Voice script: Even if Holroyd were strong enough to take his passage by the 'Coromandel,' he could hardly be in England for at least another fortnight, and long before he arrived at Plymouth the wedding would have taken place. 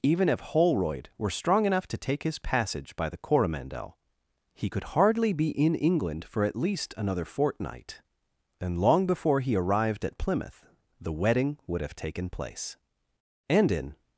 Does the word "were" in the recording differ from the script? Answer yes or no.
no